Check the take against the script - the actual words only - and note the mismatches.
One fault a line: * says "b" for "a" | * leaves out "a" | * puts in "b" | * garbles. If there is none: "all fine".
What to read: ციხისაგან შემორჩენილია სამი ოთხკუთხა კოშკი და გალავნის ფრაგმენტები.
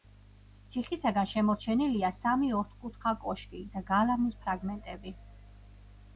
all fine